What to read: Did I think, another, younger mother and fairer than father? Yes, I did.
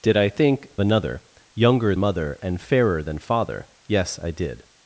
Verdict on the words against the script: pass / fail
pass